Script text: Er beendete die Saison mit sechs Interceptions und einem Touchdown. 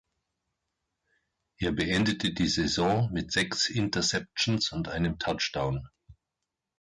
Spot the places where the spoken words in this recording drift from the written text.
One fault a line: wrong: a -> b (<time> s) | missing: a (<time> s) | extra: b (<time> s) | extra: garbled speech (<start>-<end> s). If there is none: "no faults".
no faults